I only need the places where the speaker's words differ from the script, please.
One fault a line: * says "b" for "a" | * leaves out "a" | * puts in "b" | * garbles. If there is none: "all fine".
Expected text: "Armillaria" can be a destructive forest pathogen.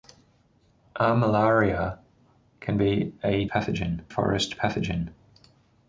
* says "pathogen" for "destructive"